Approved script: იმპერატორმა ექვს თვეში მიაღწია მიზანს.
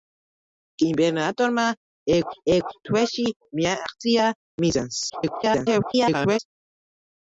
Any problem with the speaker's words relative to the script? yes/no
yes